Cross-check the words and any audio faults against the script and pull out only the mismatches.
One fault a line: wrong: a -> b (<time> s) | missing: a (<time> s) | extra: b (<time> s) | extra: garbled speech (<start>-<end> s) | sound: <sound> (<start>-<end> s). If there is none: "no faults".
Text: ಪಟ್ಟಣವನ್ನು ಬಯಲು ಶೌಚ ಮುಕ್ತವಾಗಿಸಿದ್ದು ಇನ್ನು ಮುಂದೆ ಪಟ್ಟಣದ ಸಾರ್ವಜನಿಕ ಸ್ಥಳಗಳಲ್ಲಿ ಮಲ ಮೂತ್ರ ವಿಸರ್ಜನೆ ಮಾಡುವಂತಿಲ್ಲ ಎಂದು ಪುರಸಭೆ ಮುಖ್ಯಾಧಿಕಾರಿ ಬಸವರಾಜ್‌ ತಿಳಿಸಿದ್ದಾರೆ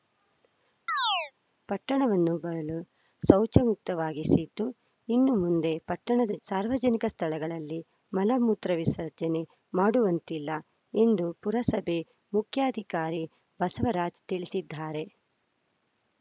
sound: chirp (0.9-1.3 s)